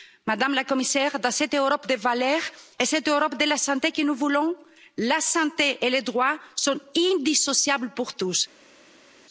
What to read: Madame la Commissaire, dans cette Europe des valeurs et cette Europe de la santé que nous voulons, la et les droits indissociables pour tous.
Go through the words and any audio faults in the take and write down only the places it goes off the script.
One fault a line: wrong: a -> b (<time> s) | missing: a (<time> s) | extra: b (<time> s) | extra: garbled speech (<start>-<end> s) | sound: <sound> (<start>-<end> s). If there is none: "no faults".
extra: santé (5.2 s)
extra: sont (6.5 s)